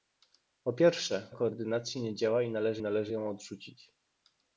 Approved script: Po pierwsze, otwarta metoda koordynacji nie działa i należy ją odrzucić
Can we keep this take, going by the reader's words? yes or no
no